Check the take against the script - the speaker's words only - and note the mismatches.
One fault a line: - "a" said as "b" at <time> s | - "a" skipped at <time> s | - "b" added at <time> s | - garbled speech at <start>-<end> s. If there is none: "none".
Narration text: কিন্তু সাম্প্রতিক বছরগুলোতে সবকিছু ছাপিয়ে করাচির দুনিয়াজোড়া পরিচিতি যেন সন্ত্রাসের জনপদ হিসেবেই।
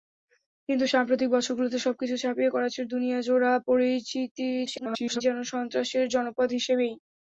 - garbled speech at 4.7-5.2 s